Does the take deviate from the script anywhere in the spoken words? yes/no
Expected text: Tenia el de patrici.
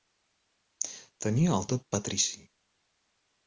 no